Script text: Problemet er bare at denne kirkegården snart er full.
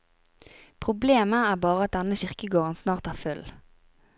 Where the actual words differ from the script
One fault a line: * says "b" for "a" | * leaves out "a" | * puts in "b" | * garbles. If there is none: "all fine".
all fine